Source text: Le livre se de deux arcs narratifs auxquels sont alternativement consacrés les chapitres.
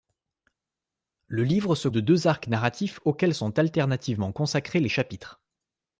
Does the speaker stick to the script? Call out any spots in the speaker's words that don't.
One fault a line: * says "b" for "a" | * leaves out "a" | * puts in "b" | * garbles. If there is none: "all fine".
all fine